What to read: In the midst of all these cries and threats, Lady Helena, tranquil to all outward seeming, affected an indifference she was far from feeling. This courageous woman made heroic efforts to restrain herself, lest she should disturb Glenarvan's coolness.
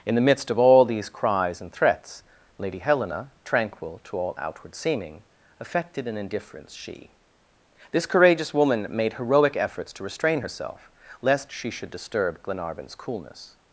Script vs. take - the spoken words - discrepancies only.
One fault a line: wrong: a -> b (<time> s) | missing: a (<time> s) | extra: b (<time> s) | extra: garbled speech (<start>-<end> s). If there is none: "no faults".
missing: was far from feeling (7.1 s)